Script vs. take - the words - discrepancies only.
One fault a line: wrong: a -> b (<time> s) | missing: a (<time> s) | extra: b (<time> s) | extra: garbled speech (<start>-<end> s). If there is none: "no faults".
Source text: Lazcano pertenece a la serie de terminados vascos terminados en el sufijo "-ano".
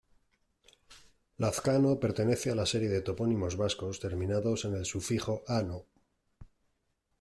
wrong: terminados -> topónimos (3.0 s)